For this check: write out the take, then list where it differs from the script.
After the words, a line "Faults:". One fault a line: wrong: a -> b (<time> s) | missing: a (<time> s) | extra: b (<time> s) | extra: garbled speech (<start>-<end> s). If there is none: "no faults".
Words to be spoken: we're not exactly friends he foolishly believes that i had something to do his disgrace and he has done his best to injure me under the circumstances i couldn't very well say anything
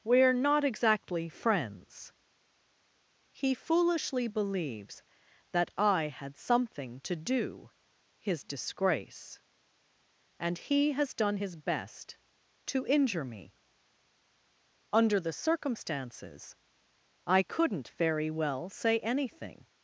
we're not exactly friends he foolishly believes that i had something to do his disgrace and he has done his best to injure me under the circumstances i couldn't very well say anything
Faults:
no faults